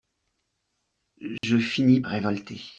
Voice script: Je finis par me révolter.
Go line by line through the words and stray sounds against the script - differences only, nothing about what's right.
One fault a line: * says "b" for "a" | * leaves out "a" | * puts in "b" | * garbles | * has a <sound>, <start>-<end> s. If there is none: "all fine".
* has a dropout, 1.4-1.4 s
* leaves out "par me"